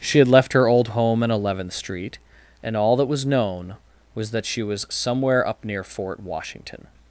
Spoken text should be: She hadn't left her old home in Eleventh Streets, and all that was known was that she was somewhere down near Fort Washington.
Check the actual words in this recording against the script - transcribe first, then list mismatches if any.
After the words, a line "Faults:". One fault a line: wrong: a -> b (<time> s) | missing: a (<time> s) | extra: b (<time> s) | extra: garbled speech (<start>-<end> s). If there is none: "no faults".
She had left her old home in Eleventh Street, and all that was known was that she was somewhere up near Fort Washington.
Faults:
wrong: hadn't -> had (0.2 s)
wrong: Streets -> Street (1.7 s)
wrong: down -> up (5.5 s)